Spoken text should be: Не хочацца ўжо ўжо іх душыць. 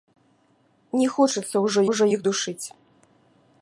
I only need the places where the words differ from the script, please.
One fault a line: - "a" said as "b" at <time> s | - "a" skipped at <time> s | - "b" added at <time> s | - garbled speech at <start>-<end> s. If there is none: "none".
none